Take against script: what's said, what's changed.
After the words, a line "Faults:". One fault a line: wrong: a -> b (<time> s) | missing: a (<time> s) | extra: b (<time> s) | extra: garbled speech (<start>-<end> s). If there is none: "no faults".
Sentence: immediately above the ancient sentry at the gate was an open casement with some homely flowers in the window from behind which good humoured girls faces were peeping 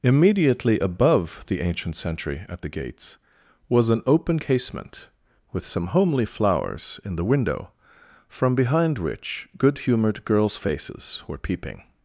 immediately above the ancient sentry at the gates was an open casement with some homely flowers in the window from behind which good humoured girls faces were peeping
Faults:
wrong: gate -> gates (2.7 s)